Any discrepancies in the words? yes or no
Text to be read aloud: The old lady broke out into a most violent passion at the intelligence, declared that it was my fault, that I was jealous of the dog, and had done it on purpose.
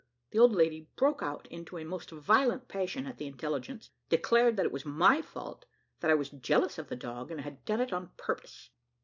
no